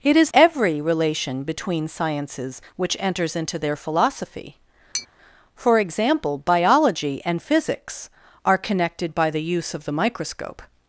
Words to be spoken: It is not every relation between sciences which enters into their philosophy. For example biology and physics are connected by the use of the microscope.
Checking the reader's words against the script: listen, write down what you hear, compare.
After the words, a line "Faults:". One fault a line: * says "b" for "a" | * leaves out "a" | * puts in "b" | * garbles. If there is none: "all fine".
It is every relation between sciences which enters into their philosophy. For example biology and physics are connected by the use of the microscope.
Faults:
* leaves out "not"